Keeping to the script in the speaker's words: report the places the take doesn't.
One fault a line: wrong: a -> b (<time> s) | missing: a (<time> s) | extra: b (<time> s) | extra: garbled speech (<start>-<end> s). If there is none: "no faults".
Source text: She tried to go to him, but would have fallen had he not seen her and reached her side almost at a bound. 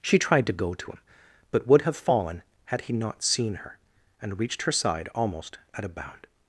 no faults